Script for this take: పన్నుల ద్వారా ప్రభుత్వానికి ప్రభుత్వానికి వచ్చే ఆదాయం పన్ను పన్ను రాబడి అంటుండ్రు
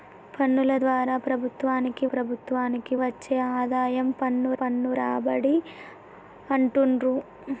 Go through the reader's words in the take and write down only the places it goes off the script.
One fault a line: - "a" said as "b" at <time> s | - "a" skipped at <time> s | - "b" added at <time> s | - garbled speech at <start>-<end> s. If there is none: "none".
none